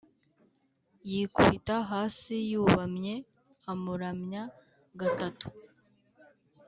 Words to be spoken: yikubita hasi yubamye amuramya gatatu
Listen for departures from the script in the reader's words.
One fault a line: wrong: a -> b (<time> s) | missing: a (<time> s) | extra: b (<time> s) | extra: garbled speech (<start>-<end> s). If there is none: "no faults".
no faults